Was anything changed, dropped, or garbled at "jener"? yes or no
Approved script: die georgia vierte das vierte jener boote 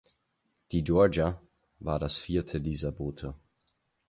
yes